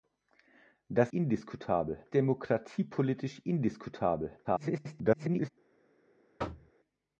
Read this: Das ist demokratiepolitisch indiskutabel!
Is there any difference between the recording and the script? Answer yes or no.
yes